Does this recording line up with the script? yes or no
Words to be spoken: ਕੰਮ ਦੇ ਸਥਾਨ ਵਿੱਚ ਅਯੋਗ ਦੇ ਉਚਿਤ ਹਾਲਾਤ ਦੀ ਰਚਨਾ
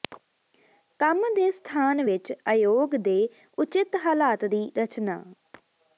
yes